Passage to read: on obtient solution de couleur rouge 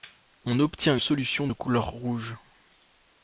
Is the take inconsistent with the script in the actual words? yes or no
no